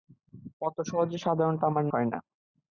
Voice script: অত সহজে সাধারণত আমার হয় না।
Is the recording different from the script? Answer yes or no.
no